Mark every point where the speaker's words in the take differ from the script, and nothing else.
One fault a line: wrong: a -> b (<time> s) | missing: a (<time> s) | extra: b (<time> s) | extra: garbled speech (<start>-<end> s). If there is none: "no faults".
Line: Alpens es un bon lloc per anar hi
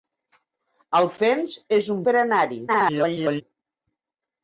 missing: bon lloc (2.0 s)
extra: garbled speech (2.7-3.4 s)